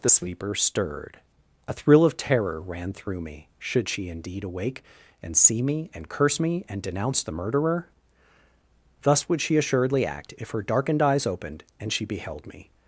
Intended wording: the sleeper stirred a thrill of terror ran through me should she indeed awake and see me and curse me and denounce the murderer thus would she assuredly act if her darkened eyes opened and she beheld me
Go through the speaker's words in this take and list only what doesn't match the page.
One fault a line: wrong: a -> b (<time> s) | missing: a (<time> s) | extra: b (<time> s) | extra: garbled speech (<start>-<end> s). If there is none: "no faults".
no faults